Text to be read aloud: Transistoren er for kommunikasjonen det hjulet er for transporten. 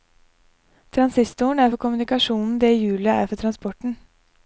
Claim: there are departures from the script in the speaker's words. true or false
false